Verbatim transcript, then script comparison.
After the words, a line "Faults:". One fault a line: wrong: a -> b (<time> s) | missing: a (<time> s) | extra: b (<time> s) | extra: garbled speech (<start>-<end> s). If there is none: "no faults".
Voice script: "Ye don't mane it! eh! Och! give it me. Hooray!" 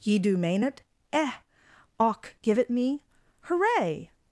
"Ye do mane it! eh! Och! give it me. Hooray!"
Faults:
wrong: don't -> do (0.2 s)